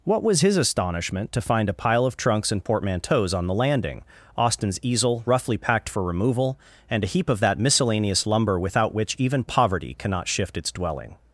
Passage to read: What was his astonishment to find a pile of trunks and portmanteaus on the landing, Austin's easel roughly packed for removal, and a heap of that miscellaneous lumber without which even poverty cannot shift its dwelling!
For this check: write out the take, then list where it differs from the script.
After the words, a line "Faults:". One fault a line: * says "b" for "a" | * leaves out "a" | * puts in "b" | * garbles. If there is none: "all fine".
What was his astonishment to find a pile of trunks and portmanteaus on the landing, Austin's easel roughly packed for removal, and a heap of that miscellaneous lumber without which even poverty cannot shift its dwelling!
Faults:
all fine